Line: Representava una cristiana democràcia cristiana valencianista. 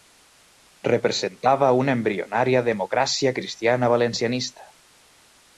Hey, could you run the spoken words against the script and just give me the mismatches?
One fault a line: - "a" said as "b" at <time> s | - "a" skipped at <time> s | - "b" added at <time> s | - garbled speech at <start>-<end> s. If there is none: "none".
- "cristiana" said as "embrionària" at 2.0 s